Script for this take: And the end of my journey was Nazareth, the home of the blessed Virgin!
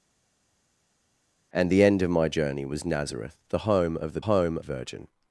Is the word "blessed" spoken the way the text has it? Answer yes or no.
no